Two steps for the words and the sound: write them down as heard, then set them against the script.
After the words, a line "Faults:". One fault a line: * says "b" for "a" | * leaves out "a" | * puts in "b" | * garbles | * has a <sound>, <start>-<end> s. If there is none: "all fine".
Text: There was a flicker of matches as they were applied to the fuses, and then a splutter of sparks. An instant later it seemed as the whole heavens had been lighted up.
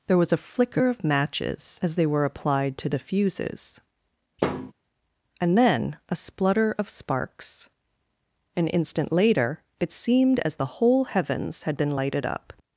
There was a flicker of matches as they were applied to the fuses, and then a splutter of sparks. An instant later it seemed as the whole heavens had been lighted up.
Faults:
* has a thud, 4.4-4.7 s